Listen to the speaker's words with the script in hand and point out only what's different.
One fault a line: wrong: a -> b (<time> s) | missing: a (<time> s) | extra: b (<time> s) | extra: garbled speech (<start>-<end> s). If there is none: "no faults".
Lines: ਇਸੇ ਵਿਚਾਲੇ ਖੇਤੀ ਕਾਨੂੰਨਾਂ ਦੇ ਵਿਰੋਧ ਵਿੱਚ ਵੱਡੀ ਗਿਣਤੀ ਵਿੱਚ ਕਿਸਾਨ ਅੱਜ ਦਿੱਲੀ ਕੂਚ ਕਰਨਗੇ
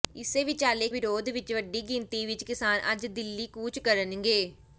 missing: ਖੇਤੀ ਕਾਨੂੰਨਾਂ ਦੇ (0.9 s)